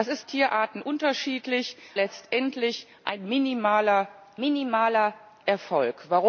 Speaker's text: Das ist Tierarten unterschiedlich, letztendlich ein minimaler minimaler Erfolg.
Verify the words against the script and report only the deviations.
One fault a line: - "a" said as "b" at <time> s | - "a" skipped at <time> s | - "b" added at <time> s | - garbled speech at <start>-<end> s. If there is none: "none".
none